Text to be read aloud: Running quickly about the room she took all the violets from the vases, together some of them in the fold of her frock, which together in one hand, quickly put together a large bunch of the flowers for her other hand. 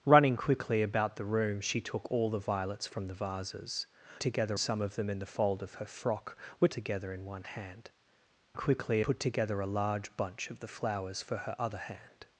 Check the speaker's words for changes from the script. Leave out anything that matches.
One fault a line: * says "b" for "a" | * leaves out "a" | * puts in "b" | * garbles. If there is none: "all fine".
all fine